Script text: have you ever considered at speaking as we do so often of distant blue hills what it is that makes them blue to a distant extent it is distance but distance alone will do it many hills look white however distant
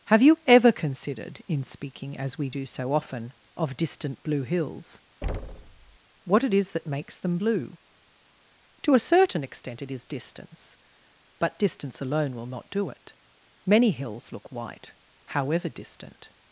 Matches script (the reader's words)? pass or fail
fail